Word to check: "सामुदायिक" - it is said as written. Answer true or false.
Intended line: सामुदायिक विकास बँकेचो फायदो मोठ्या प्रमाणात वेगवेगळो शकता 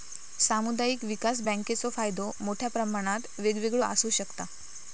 true